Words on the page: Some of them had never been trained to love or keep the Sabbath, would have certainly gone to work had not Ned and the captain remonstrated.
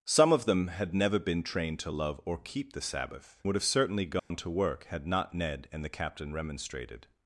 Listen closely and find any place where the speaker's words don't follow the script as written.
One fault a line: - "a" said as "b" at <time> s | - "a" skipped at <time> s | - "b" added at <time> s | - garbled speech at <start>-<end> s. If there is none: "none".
none